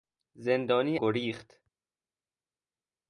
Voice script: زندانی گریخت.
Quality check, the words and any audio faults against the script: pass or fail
pass